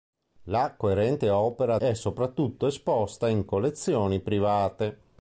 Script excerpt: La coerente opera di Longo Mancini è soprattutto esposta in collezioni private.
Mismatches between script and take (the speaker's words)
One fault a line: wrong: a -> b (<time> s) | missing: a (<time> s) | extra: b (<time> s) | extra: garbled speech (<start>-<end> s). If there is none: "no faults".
missing: di Longo Mancini (1.8 s)